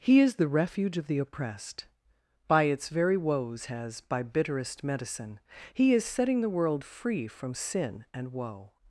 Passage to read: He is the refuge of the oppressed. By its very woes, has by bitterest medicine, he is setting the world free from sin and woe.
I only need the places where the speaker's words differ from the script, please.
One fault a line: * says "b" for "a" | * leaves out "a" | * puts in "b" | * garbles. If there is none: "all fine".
all fine